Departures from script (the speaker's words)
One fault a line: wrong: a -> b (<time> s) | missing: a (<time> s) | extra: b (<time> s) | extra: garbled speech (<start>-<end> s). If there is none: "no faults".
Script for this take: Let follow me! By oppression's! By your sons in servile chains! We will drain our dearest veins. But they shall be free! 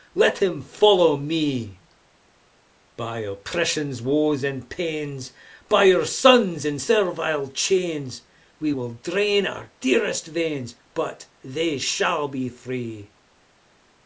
extra: him (0.4 s)
extra: woes and pains (4.0 s)